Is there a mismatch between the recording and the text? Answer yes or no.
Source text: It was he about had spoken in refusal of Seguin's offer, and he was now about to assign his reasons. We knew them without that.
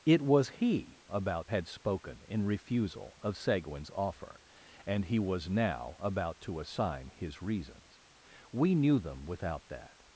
no